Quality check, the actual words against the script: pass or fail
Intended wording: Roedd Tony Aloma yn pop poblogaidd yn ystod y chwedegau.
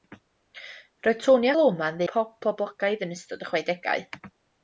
pass